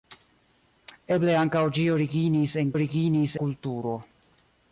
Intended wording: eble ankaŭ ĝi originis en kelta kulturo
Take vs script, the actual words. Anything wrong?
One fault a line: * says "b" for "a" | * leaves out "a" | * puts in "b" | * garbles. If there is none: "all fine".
* says "originis" for "kelta"